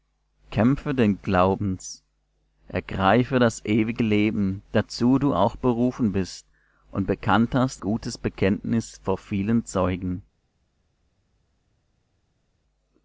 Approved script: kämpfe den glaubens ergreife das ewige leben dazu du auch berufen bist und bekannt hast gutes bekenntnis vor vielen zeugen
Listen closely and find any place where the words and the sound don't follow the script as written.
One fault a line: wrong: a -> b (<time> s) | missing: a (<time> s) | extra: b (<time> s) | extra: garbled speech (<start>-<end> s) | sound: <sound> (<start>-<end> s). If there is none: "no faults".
no faults